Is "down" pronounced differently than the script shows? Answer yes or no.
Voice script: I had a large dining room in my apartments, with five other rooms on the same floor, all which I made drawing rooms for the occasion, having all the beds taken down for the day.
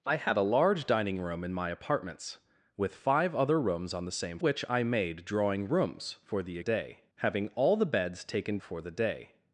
yes